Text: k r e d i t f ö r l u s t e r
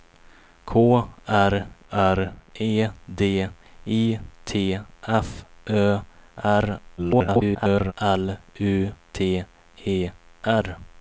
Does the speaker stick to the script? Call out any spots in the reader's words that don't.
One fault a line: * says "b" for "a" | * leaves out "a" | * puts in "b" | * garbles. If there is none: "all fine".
* puts in "r"
* garbles
* leaves out "s"